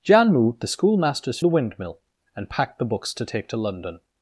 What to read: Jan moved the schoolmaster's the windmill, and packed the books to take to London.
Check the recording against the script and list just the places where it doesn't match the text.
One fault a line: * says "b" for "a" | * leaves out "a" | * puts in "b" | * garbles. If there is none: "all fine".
all fine